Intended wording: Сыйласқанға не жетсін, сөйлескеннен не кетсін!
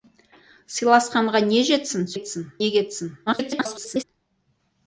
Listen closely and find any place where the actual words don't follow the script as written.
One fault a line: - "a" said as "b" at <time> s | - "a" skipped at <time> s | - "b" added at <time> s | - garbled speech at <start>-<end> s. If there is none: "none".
- "сөйлескеннен" said as "кетсін" at 2.1 s
- garbled speech at 3.3-4.0 s